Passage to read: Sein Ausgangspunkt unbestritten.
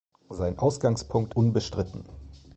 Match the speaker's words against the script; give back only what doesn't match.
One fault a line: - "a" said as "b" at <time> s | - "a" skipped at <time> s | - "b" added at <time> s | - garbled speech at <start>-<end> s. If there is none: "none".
none